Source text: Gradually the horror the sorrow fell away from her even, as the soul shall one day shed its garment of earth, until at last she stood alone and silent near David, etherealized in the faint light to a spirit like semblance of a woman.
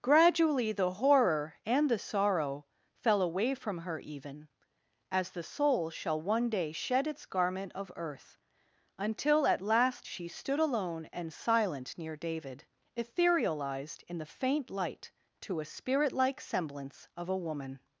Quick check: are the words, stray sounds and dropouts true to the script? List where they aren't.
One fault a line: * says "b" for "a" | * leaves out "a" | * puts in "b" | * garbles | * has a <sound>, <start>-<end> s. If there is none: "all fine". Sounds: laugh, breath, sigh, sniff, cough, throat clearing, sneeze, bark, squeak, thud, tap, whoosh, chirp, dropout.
* puts in "and"